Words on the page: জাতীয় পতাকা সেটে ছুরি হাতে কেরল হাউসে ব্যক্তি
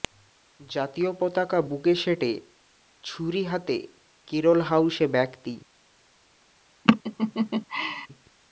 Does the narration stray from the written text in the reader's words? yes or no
yes